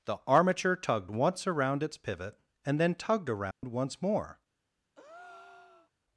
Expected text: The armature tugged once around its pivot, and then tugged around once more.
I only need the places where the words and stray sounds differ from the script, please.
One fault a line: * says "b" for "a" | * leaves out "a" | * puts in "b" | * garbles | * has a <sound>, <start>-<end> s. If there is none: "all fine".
* has a dropout, 3.5-3.6 s
* has a breath, 4.9-5.9 s